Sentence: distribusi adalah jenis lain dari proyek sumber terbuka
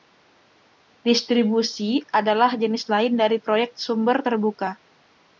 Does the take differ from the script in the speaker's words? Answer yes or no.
no